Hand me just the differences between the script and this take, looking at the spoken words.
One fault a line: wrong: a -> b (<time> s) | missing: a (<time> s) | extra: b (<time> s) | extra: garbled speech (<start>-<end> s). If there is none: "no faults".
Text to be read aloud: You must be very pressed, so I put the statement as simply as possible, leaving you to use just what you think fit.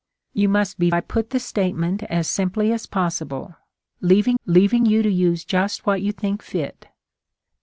missing: very pressed so (0.9 s)
extra: leaving (4.4 s)